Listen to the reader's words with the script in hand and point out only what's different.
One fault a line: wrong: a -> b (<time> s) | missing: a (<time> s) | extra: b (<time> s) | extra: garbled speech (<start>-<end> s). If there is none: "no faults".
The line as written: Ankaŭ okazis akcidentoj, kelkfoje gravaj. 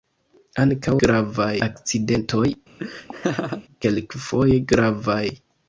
wrong: okazis -> gravaj (1.1 s)